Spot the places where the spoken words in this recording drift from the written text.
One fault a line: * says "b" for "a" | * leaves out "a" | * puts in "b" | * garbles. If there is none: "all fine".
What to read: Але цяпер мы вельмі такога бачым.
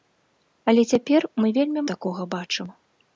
all fine